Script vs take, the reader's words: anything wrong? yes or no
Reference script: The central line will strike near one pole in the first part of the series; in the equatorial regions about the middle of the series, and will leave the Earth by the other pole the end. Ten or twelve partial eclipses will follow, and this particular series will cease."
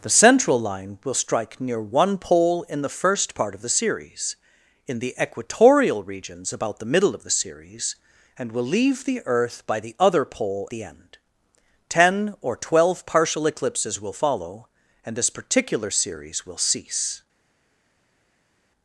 no